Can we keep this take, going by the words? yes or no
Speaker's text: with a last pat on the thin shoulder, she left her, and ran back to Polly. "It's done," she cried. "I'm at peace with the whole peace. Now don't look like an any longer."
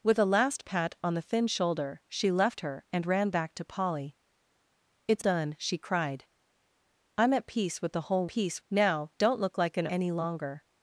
yes